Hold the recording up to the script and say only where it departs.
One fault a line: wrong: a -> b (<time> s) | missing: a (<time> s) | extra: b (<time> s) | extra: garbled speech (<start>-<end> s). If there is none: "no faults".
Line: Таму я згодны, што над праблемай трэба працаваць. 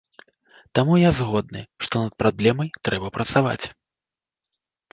no faults